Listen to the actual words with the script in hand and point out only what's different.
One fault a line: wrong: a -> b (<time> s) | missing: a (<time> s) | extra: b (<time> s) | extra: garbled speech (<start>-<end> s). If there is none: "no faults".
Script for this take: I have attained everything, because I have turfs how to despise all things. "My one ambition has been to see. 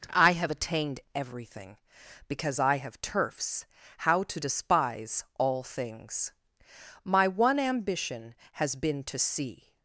no faults